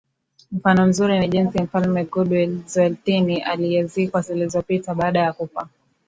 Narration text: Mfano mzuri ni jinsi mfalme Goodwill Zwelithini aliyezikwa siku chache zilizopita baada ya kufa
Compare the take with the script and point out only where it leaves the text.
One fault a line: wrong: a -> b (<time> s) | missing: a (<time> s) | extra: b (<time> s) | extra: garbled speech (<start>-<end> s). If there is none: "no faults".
missing: siku chache (4.2 s)